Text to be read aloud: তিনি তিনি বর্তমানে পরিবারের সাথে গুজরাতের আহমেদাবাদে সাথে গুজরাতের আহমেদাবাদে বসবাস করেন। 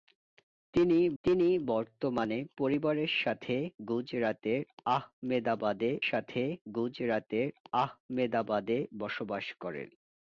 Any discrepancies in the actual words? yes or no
no